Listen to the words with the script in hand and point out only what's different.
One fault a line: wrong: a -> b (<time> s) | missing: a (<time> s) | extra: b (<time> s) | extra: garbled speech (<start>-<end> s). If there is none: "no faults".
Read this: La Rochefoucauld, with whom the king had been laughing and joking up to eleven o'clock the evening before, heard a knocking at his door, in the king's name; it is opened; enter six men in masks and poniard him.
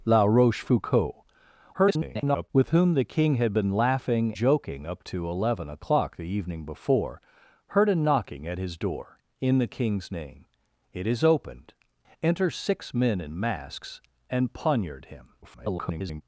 extra: garbled speech (1.7-2.5 s)
missing: and (4.3 s)
extra: garbled speech (15.4-16.2 s)